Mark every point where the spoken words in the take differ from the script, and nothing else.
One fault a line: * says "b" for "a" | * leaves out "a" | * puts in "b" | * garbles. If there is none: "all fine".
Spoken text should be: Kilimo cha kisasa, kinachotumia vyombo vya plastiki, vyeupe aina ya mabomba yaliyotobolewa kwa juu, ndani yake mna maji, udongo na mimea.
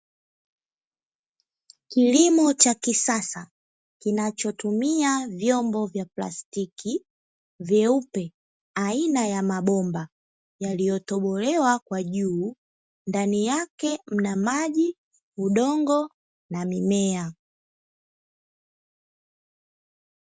all fine